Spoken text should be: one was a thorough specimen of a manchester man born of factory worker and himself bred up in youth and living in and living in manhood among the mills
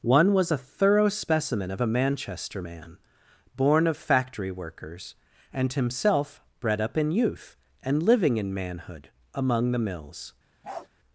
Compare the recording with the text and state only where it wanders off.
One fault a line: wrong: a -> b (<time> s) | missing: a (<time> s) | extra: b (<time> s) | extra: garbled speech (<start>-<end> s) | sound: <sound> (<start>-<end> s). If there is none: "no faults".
wrong: worker -> workers (4.5 s)
missing: and living in (8.5 s)
sound: bark (10.6-10.9 s)